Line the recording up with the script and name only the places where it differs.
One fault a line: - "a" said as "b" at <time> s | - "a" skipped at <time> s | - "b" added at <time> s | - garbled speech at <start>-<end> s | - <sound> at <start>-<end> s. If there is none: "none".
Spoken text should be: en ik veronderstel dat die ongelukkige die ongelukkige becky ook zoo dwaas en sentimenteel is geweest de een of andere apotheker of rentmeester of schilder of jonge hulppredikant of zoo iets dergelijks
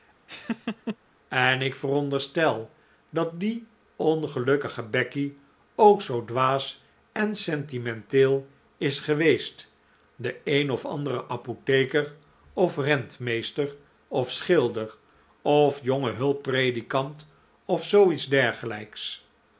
- laugh at 0.3-1.0 s
- "die ongelukkige" skipped at 4.8 s